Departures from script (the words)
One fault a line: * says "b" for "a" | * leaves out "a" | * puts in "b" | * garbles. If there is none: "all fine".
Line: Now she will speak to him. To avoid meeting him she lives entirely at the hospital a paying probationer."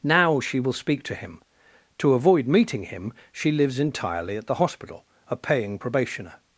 all fine